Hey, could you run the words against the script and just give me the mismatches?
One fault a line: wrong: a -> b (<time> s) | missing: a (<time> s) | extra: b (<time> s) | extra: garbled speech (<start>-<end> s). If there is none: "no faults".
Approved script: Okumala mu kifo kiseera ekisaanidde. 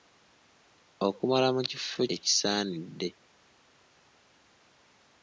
missing: kiseera (2.0 s)